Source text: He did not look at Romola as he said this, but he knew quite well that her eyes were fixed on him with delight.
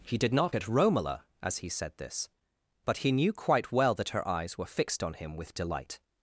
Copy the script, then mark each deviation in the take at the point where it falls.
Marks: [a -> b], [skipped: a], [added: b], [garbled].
He did not [skipped: look] at Romola as he said this, but he knew quite well that her eyes were fixed on him with delight.